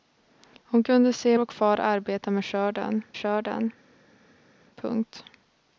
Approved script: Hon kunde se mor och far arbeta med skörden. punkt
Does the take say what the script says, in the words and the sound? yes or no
no